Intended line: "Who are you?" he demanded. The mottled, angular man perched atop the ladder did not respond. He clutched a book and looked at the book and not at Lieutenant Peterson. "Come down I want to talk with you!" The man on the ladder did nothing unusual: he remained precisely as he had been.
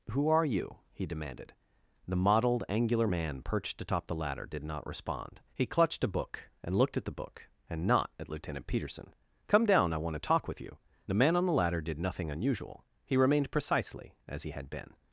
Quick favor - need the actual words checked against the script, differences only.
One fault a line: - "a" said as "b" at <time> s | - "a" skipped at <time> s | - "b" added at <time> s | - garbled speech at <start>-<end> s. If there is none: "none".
none